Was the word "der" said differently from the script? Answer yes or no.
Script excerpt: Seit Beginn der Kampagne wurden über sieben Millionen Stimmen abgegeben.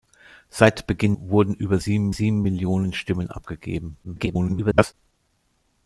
yes